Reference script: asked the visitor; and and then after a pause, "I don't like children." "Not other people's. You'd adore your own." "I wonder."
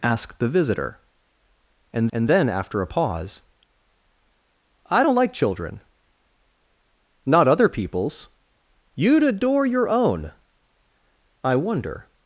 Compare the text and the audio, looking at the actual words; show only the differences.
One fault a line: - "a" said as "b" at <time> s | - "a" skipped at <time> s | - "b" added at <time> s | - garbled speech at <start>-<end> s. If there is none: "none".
none